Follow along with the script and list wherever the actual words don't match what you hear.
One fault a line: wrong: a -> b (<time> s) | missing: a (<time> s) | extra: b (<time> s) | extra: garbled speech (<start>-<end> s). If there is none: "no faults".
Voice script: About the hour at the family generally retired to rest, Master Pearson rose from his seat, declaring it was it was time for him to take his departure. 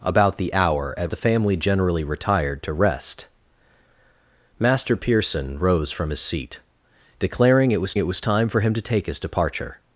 no faults